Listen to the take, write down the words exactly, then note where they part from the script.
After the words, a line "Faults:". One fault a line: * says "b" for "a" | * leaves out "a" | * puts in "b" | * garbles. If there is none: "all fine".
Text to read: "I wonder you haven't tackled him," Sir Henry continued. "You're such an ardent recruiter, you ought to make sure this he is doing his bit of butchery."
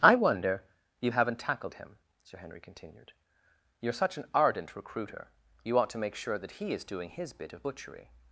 "I wonder you haven't tackled him," Sir Henry continued. "You're such an ardent recruiter, you ought to make sure that he is doing his bit of butchery."
Faults:
* says "that" for "this"